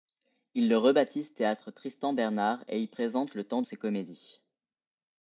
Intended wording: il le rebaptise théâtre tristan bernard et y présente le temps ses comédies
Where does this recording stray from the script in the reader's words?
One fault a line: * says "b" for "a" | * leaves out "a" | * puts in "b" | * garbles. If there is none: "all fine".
all fine